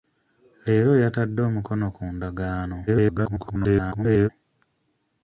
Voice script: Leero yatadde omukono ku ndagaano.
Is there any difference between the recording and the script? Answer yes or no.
yes